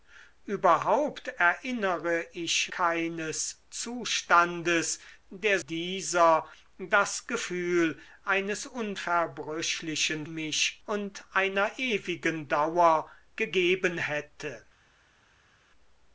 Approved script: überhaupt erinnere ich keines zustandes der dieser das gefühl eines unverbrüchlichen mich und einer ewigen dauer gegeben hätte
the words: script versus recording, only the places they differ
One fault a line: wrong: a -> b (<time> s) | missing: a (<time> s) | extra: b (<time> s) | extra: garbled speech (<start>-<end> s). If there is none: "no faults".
no faults